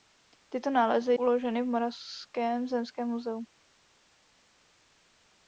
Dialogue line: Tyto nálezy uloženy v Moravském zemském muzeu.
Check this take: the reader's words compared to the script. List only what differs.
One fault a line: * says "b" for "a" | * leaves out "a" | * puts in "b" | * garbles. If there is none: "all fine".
all fine